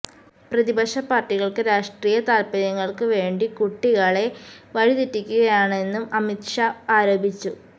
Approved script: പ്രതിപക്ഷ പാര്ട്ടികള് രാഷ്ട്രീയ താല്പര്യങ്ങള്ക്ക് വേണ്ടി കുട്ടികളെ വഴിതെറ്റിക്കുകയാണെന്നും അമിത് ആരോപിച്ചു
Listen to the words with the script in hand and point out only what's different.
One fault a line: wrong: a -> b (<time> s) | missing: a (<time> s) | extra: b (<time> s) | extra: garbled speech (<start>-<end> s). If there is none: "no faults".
extra: ഷാ (6.5 s)